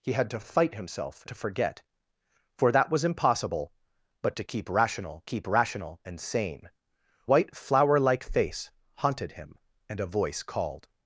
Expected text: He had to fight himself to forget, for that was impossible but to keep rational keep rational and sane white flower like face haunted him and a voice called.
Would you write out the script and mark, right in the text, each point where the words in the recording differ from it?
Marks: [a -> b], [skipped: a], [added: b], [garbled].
He had to fight himself to forget, for that was impossible but to keep rational keep rational and sane white flower like face haunted him and a voice called.